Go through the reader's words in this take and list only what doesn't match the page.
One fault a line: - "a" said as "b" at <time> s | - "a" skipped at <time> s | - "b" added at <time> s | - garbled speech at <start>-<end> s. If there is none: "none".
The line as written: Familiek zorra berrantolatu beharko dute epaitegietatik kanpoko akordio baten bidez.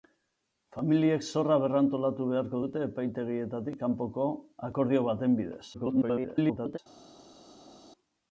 - garbled speech at 5.7-6.8 s